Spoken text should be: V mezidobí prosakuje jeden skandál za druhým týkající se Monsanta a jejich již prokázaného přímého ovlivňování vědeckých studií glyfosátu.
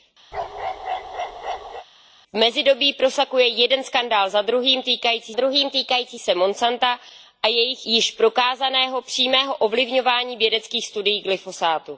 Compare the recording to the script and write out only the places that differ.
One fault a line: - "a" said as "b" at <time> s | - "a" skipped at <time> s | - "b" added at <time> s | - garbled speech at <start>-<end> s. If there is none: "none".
- "druhým týkající" added at 5.3 s